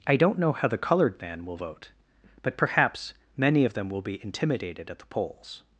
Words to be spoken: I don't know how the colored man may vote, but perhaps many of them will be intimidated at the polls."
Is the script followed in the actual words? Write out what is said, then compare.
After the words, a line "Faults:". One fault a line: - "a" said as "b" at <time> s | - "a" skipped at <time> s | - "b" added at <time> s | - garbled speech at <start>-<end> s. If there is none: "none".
I don't know how the colored man will vote, but perhaps many of them will be intimidated at the polls."
Faults:
- "may" said as "will" at 1.4 s